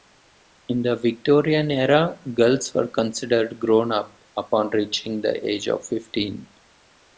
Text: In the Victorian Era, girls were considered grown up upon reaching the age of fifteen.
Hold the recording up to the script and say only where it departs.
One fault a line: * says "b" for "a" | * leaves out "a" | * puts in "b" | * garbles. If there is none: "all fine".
all fine